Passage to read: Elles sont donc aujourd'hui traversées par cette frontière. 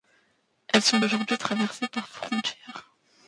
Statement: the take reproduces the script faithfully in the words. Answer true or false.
false